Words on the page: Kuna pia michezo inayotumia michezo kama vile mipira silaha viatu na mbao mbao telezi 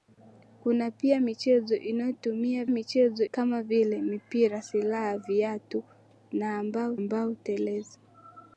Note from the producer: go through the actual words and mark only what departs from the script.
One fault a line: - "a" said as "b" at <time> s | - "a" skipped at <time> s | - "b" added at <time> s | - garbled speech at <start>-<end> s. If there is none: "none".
none